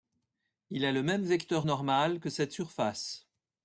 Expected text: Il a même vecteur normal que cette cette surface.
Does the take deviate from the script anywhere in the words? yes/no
yes